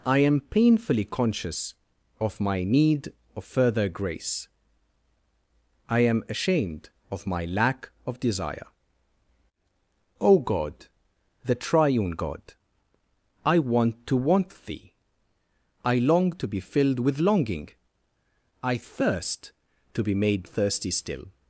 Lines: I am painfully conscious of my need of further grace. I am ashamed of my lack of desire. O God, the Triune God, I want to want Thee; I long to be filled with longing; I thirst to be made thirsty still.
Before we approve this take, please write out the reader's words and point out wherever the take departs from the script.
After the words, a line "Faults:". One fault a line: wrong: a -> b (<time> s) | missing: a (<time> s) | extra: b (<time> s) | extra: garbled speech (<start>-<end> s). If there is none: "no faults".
I am painfully conscious of my need of further grace. I am ashamed of my lack of desire. O God, the Triune God, I want to want Thee; I long to be filled with longing; I thirst to be made thirsty still.
Faults:
no faults